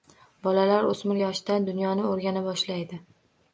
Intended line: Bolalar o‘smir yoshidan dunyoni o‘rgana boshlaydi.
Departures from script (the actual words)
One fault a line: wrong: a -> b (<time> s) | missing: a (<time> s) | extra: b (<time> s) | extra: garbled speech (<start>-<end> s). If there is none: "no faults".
no faults